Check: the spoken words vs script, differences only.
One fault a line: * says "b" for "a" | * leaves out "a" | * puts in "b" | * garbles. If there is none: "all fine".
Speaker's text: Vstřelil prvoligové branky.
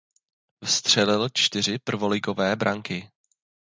* puts in "čtyři"